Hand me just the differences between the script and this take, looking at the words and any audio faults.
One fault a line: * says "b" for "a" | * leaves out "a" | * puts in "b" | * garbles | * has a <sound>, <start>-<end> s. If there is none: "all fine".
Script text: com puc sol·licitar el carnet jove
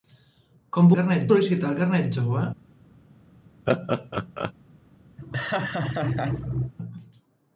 * says "carnet" for "puc"
* has a laugh, 3.7-4.5 s
* has a laugh, 5.2-6.7 s